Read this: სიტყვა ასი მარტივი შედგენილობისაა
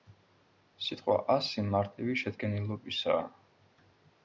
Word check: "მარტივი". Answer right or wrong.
right